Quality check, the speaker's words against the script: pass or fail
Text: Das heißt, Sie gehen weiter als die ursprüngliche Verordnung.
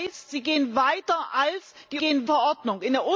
fail